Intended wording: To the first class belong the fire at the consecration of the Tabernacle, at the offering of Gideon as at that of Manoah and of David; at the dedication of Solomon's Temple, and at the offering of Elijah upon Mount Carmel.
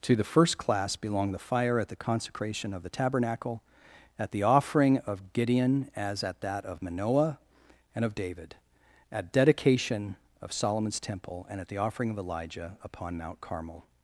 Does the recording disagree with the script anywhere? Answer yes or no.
yes